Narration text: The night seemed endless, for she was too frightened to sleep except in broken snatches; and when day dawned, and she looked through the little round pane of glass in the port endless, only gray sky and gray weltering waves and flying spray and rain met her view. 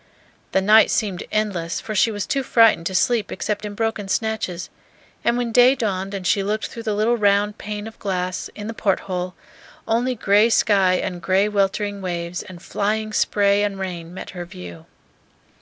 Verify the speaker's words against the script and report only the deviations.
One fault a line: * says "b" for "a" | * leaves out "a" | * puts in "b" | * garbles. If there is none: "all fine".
* says "hole" for "endless"